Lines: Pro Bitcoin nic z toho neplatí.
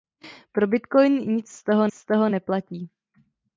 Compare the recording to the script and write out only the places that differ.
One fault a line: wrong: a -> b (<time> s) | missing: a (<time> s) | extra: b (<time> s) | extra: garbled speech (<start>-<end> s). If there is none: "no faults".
extra: z toho (1.9 s)